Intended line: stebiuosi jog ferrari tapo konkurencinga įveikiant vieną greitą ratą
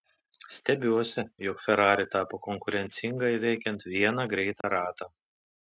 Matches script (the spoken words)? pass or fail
pass